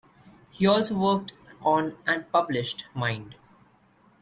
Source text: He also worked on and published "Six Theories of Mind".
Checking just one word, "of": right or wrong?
wrong